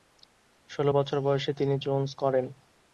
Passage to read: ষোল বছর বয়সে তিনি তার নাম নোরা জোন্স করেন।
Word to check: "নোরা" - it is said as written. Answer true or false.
false